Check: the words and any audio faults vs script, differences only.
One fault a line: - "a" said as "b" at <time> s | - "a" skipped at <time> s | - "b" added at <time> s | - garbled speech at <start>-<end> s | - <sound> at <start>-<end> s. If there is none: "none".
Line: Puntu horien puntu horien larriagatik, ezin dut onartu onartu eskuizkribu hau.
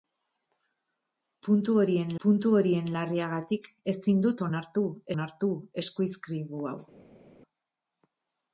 none